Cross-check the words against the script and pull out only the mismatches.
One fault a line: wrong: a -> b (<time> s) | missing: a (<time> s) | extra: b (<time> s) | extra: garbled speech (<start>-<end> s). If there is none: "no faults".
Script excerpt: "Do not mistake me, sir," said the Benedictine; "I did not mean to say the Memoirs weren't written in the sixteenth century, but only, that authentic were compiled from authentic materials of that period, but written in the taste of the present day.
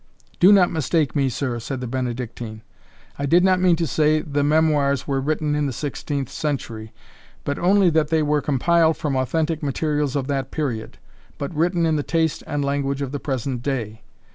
wrong: weren't -> were (5.1 s)
wrong: authentic -> they (8.1 s)
extra: and language (12.5 s)